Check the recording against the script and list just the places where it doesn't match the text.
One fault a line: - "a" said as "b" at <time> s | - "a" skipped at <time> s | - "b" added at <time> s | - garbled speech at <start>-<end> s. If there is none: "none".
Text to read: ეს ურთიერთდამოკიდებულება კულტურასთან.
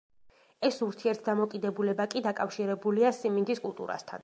- "კი დაკავშირებულია სიმინდის" added at 2.1 s